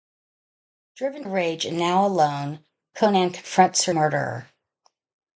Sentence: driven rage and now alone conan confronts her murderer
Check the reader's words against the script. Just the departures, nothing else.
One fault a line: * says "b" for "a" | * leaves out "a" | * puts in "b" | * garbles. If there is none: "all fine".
all fine